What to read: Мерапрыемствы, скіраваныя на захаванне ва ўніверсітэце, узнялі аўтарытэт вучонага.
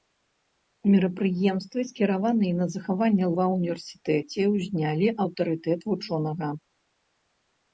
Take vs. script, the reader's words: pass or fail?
pass